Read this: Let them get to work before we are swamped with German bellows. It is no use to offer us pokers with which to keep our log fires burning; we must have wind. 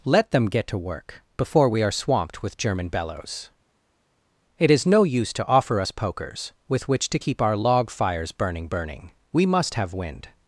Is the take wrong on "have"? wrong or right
right